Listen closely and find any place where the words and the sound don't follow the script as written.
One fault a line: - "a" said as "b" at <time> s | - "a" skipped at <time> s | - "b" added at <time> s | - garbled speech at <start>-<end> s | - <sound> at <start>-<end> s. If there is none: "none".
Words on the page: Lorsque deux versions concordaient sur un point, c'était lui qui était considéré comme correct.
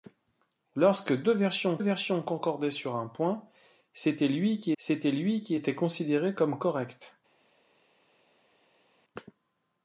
- "versions" added at 1.8 s
- "c'était lui qui" added at 4.8 s